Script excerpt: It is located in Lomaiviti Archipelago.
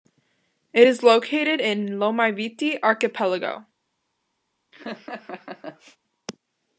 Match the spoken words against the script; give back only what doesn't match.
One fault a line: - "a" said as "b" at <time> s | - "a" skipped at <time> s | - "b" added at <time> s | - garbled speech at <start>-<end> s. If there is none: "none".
none